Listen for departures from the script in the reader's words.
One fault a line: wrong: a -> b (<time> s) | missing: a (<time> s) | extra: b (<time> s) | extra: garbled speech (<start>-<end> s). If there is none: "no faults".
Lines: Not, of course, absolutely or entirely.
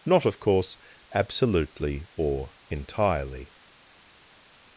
no faults